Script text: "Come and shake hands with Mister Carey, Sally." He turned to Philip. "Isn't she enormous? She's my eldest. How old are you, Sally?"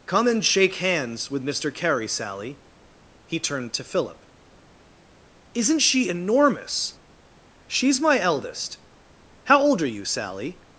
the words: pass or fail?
pass